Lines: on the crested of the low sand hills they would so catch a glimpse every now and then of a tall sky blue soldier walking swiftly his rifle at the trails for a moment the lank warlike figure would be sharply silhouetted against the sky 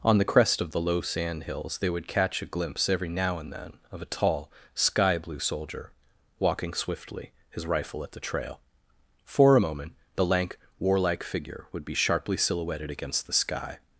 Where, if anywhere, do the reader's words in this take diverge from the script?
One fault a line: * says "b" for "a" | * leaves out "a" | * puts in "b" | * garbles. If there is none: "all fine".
* says "crest" for "crested"
* leaves out "so"
* says "trail" for "trails"